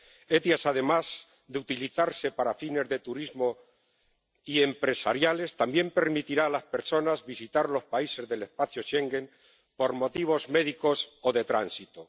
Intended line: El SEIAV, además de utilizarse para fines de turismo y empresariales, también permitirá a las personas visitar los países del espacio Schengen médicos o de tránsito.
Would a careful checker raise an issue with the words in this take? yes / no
yes